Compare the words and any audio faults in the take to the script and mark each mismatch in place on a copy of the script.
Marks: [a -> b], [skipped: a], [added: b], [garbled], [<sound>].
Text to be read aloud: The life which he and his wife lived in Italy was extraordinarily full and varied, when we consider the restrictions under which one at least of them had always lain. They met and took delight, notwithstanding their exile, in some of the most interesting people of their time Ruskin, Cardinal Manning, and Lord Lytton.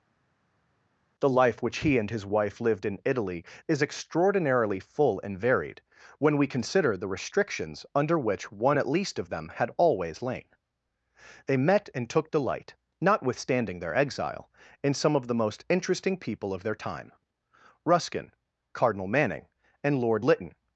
The life which he and his wife lived in Italy [was -> is] extraordinarily full and varied, when we consider the restrictions under which one at least of them had always lain. They met and took delight, notwithstanding their exile, in some of the most interesting people of their time Ruskin, Cardinal Manning, and Lord Lytton.